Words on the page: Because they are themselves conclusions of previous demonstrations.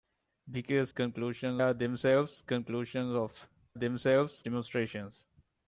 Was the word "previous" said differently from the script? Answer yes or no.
yes